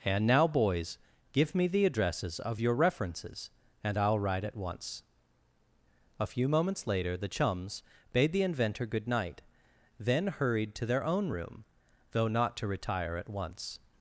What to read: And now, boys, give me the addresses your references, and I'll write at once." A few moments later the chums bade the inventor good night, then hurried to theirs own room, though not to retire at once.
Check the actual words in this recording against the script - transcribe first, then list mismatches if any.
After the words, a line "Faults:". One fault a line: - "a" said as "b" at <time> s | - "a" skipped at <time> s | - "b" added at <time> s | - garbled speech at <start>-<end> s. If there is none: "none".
And now, boys, give me the addresses of your references, and I'll write at once." A few moments later the chums bade the inventor good night, then hurried to their own room, though not to retire at once.
Faults:
- "of" added at 2.4 s
- "theirs" said as "their" at 10.9 s